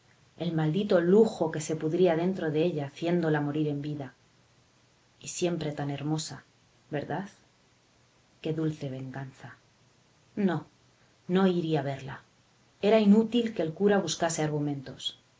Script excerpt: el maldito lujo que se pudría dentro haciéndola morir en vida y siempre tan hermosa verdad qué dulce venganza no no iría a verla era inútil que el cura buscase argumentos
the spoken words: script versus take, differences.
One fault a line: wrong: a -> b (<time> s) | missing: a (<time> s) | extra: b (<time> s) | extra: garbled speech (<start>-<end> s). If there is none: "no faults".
extra: de ella (2.5 s)